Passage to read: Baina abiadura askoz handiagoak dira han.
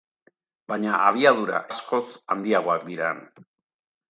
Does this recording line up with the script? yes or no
yes